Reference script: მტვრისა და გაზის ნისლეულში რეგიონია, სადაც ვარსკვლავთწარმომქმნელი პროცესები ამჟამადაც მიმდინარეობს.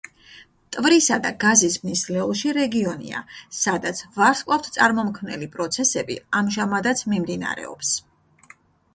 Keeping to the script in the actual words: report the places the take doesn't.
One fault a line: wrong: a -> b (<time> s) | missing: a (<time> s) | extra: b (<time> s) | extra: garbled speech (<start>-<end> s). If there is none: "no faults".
no faults